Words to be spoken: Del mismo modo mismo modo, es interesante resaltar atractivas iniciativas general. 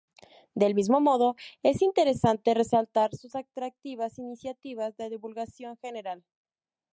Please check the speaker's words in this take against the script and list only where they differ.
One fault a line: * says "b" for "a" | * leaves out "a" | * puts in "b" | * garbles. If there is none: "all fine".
* leaves out "mismo modo"
* puts in "sus"
* puts in "de divulgación"